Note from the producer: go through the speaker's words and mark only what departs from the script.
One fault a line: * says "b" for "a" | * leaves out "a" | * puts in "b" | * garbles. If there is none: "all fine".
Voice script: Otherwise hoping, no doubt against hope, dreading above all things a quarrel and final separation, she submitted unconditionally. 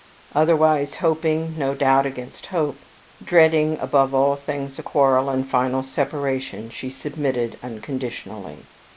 all fine